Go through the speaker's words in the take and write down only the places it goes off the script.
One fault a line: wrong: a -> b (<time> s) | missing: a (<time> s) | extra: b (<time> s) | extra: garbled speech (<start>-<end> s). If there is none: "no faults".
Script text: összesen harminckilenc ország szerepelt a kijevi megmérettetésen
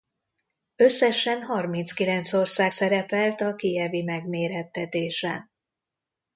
no faults